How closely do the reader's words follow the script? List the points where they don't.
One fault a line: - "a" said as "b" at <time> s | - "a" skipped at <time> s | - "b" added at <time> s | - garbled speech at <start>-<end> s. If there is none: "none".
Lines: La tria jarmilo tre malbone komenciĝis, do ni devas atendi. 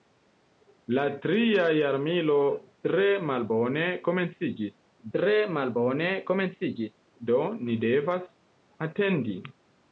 - "tre malbone komenciĝis" added at 5.2 s